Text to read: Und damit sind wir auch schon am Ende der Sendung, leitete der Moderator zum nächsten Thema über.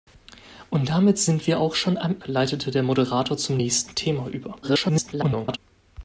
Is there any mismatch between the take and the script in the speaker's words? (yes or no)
yes